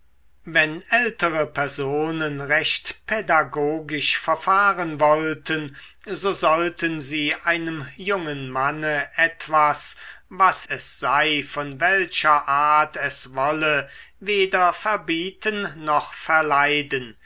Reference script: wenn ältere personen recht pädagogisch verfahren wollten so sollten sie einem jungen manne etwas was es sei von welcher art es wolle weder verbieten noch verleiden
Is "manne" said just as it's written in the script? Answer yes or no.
yes